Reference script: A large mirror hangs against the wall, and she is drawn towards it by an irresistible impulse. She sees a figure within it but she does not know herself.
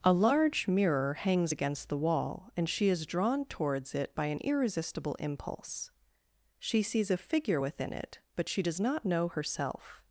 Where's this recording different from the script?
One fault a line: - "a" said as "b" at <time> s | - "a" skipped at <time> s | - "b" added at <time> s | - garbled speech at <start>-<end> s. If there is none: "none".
none